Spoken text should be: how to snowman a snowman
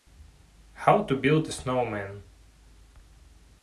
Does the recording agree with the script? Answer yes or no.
no